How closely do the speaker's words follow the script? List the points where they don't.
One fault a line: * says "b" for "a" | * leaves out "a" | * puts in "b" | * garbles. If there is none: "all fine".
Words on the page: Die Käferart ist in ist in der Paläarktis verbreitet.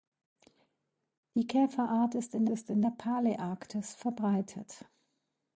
all fine